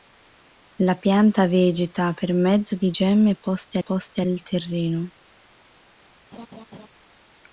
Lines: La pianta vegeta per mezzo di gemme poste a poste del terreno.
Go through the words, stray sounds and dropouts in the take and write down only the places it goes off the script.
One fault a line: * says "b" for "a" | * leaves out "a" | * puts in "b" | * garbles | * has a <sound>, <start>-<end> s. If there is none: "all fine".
* has a laugh, 6.3-6.9 s